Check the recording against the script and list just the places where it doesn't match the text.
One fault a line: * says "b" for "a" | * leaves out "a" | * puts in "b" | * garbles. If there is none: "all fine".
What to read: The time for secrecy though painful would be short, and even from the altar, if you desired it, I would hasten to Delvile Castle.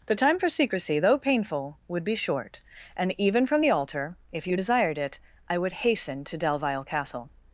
all fine